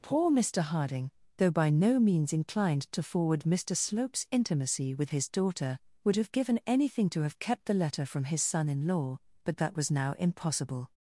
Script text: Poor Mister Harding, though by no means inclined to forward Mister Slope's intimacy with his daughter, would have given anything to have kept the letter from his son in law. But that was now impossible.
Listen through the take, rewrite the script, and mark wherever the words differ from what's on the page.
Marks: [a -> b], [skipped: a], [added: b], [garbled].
Poor Mister Harding, though by no means inclined to forward Mister Slope's intimacy with his daughter, would have given anything to have kept the letter from his son in law. But that was now impossible.